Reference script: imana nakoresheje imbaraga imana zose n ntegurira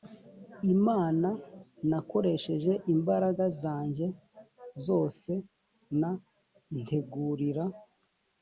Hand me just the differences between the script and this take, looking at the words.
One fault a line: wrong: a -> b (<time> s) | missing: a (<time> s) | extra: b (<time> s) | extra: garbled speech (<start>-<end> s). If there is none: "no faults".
wrong: imana -> zanjye (3.6 s)